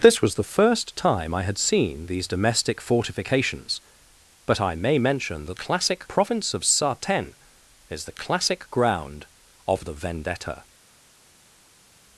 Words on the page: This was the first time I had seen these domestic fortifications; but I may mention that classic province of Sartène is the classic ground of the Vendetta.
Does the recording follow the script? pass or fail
pass